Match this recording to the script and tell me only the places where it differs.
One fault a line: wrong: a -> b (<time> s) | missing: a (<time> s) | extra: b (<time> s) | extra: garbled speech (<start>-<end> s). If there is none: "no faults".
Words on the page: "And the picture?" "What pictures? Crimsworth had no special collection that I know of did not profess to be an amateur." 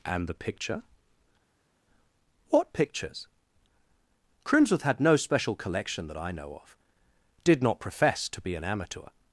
no faults